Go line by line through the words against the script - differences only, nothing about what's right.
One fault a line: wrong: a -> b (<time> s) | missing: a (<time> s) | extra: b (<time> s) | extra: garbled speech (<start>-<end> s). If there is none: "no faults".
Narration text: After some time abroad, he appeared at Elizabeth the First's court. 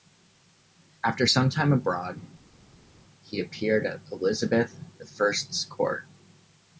no faults